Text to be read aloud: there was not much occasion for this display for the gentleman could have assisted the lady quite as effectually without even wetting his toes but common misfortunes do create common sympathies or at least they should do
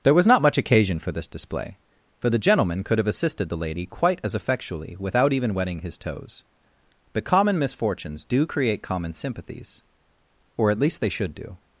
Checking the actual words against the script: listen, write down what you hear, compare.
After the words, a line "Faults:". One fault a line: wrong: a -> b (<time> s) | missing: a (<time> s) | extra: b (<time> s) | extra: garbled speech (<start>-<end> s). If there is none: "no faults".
there was not much occasion for this display for the gentleman could have assisted the lady quite as effectually without even wetting his toes but common misfortunes do create common sympathies or at least they should do
Faults:
no faults